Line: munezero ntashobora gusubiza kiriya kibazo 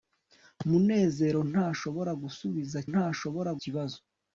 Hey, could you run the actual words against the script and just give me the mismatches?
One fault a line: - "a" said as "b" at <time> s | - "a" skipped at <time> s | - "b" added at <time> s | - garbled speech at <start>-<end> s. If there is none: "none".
- "kiriya" said as "ntashobora" at 2.9 s